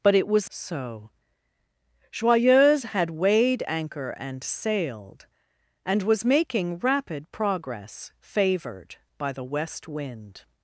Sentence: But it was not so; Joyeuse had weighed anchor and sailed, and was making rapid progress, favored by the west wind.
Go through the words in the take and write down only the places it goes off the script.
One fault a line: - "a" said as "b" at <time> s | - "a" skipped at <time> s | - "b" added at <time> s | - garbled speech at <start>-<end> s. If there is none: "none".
- "not" skipped at 0.5 s